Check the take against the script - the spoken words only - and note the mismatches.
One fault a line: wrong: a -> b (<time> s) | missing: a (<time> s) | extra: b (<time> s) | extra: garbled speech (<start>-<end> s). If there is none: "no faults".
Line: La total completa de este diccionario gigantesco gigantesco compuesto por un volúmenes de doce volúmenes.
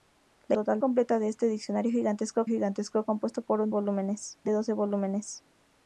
no faults